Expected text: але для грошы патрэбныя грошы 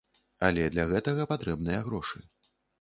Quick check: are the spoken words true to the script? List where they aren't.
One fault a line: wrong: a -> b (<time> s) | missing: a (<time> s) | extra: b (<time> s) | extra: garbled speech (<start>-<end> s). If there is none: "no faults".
wrong: грошы -> гэтага (0.9 s)